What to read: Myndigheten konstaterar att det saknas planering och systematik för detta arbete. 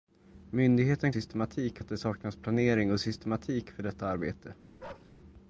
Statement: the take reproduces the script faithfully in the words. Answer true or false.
false